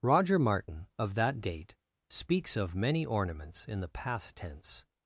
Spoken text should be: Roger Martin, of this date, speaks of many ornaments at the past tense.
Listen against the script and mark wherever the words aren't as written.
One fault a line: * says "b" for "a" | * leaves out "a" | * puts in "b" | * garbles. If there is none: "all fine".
* says "that" for "this"
* says "in" for "at"